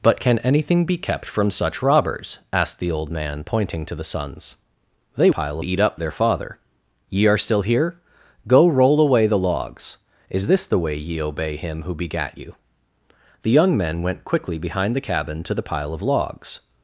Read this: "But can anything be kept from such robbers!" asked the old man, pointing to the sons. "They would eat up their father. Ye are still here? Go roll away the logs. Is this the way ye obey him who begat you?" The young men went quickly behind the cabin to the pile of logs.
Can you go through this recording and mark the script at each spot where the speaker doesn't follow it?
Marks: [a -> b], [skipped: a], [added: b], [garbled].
"But can anything be kept from such robbers!" asked the old man, pointing to the sons. "They [would -> pile] eat up their father. Ye are still here? Go roll away the logs. Is this the way ye obey him who begat you?" The young men went quickly behind the cabin to the pile of logs.